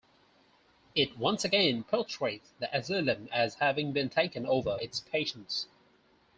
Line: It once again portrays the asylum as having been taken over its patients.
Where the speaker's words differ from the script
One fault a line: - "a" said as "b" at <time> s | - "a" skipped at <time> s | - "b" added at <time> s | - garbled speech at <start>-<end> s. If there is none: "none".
none